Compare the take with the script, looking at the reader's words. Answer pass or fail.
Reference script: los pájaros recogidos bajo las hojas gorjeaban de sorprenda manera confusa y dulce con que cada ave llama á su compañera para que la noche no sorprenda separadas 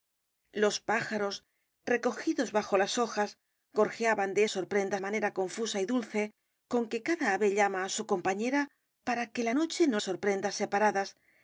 pass